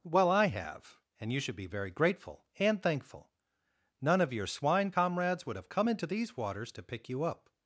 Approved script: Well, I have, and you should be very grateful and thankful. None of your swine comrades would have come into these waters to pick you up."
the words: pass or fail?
pass